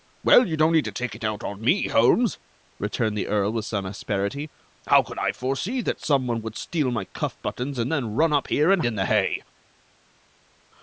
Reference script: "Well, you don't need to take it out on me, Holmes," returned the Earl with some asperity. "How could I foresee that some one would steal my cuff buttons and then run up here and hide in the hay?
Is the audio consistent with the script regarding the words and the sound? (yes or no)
no